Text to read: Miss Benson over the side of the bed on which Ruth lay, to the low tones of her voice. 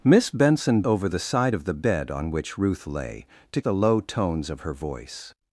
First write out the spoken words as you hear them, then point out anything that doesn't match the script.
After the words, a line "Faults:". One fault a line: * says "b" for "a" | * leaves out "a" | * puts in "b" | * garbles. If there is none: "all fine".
Miss Benson over the side of the bed on which Ruth lay, to the low tones of her voice.
Faults:
all fine